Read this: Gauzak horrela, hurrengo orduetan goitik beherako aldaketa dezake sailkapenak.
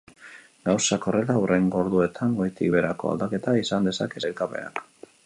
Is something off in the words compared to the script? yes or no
yes